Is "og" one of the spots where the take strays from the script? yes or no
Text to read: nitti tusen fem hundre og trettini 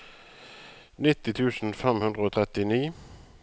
no